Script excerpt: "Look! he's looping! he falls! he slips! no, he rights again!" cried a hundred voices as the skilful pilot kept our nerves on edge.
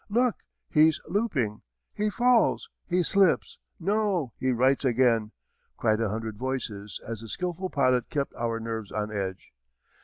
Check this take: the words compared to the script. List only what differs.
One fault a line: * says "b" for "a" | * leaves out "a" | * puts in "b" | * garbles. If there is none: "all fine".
all fine